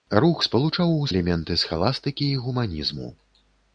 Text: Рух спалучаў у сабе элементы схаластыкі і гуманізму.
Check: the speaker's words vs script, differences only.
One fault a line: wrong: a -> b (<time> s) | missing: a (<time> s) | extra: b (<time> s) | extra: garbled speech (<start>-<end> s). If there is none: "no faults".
missing: сабе (1.1 s)